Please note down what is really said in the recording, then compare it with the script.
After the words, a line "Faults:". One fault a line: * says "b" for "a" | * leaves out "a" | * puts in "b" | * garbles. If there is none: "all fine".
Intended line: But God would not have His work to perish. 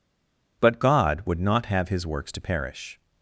But God would not have His works to perish.
Faults:
* says "works" for "work"